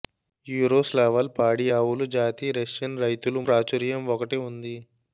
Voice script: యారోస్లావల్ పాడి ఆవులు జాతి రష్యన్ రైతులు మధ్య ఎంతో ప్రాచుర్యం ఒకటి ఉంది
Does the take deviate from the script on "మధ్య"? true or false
true